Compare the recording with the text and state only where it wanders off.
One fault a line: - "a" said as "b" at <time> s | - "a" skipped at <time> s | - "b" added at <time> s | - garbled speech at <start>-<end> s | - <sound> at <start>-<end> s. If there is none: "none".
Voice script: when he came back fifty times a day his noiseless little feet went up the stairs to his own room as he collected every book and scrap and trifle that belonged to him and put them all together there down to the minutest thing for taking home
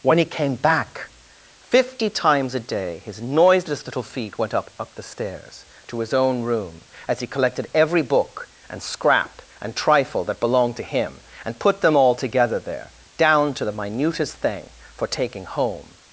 - "up" added at 4.8 s